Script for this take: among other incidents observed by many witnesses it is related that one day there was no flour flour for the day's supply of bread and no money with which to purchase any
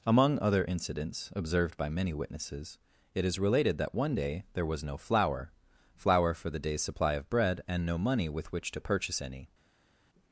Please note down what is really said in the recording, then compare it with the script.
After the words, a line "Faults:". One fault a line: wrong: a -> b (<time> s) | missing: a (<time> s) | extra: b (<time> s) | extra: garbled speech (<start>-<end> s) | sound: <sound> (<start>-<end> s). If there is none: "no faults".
among other incidents observed by many witnesses it is related that one day there was no flour flour for the day's supply of bread and no money with which to purchase any
Faults:
no faults